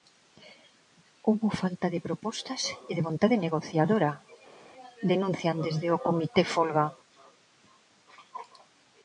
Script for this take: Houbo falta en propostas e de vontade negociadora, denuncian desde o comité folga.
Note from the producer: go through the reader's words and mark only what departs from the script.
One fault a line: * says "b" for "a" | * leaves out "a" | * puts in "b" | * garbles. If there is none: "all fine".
* says "de" for "en"